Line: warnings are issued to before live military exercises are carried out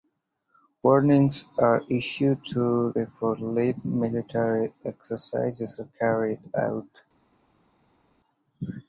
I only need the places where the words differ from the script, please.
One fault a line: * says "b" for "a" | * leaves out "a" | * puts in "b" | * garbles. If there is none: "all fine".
all fine